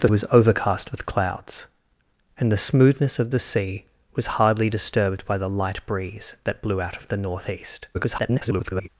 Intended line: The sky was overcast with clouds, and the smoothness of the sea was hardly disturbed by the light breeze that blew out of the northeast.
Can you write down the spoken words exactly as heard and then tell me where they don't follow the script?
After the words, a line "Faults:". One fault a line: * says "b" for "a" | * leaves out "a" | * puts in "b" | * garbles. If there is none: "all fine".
The was overcast with clouds, and the smoothness of the sea was hardly disturbed by the light breeze that blew out of the northeast. [garbled]
Faults:
* leaves out "sky"
* garbles